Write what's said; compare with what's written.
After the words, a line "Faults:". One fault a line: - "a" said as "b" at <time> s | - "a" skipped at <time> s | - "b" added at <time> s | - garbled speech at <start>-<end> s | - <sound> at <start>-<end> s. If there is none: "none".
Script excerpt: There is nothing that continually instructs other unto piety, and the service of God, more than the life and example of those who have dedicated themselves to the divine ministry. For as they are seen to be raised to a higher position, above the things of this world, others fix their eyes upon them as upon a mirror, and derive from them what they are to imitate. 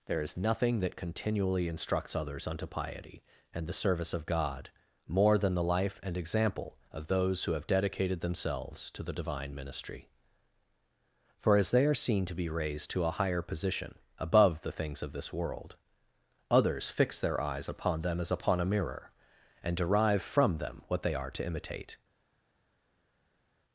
There is nothing that continually instructs others unto piety, and the service of God, more than the life and example of those who have dedicated themselves to the divine ministry. For as they are seen to be raised to a higher position, above the things of this world, others fix their eyes upon them as upon a mirror, and derive from them what they are to imitate.
Faults:
- "other" said as "others" at 2.1 s